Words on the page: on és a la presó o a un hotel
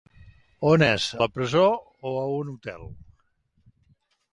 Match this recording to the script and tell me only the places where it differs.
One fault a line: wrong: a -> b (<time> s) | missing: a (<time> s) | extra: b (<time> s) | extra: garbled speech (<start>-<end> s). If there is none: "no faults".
missing: a (1.1 s)